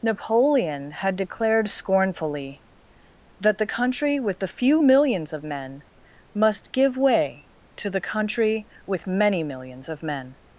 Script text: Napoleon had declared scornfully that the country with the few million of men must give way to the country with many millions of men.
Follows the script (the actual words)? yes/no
no